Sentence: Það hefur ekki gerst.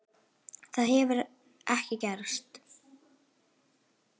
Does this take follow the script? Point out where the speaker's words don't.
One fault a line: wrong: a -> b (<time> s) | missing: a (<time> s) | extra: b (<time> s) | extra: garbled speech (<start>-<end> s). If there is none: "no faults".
no faults